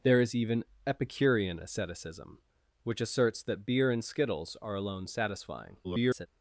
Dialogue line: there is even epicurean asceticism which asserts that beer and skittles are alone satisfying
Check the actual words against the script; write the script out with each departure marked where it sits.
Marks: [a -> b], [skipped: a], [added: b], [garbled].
there is even epicurean asceticism which asserts that beer and skittles are alone satisfying [garbled]